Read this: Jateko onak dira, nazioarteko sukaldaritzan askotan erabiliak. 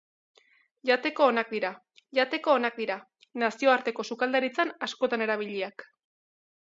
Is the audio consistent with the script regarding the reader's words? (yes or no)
no